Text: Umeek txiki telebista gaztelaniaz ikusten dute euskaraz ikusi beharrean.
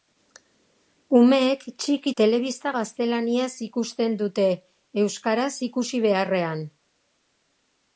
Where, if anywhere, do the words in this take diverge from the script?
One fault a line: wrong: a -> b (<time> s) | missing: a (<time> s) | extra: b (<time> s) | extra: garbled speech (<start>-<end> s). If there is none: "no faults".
no faults